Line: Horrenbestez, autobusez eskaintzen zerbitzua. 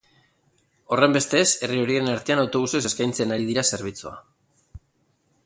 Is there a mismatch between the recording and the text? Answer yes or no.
yes